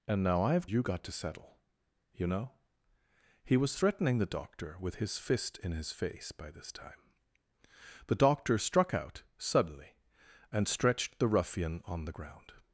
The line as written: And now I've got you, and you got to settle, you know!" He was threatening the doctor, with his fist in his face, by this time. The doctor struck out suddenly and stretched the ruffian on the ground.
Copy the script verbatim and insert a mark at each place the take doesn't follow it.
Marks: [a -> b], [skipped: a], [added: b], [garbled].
And now I've [skipped: got you, and] you got to settle, you know!" He was threatening the doctor, with his fist in his face, by this time. The doctor struck out suddenly and stretched the ruffian on the ground.